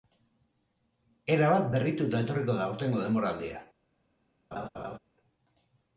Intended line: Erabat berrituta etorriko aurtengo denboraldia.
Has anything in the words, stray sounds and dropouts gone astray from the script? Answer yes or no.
yes